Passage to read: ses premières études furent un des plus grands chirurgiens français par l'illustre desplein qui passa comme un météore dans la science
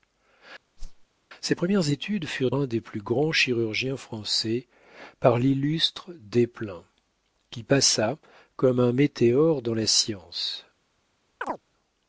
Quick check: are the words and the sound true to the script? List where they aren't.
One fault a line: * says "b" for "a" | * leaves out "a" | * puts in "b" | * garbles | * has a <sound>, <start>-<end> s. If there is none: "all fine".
* has a whoosh, 0.8-1.1 s
* has a chirp, 11.4-11.6 s